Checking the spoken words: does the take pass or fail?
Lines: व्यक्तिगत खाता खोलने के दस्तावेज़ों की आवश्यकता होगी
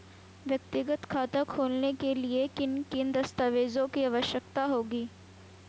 fail